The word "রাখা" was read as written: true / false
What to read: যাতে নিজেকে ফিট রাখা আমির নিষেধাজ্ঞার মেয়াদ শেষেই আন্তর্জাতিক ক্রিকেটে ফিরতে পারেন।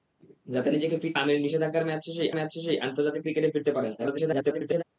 false